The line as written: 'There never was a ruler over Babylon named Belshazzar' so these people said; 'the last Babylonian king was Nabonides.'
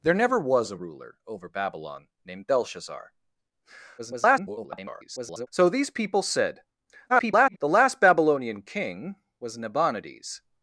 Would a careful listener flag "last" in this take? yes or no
no